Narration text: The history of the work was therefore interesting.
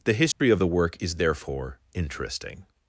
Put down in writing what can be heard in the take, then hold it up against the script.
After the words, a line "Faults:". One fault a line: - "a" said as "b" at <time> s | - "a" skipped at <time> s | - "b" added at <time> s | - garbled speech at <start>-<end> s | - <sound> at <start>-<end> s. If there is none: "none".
The history of the work is therefore interesting.
Faults:
- dropout at 0.3-0.4 s
- "was" said as "is" at 1.0 s